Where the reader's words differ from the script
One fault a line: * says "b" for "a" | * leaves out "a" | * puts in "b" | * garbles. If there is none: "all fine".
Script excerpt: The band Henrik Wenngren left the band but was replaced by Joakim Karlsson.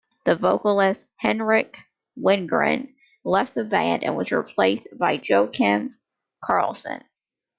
* says "vocalist" for "band"
* says "and" for "but"